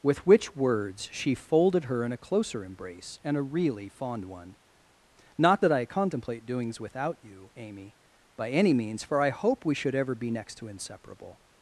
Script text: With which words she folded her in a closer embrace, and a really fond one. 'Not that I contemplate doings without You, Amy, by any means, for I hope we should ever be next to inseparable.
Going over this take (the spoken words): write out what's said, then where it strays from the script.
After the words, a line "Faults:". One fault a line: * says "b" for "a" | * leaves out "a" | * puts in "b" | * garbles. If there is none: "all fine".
With which words she folded her in a closer embrace, and a really fond one. 'Not that I contemplate doings without You, Amy, by any means, for I hope we should ever be next to inseparable.
Faults:
all fine